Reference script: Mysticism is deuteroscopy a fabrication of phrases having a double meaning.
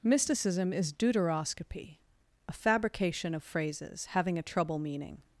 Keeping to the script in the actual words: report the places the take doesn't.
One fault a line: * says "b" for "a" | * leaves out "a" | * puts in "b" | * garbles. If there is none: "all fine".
* says "trouble" for "double"